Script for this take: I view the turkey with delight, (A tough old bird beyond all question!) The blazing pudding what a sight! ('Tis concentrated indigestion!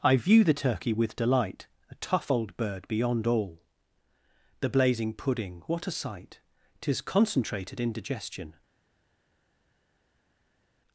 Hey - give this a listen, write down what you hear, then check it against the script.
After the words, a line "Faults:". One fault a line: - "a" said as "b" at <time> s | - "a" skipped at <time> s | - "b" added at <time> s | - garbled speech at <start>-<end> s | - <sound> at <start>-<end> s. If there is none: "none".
I view the turkey with delight, (A tough old bird beyond all!) The blazing pudding what a sight! ('Tis concentrated indigestion!
Faults:
- "question" skipped at 3.6 s